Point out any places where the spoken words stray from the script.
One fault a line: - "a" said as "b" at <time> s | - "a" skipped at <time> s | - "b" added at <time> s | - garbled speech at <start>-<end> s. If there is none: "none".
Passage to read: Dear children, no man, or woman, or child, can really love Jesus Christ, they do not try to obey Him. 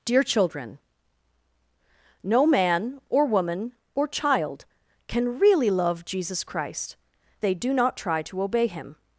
none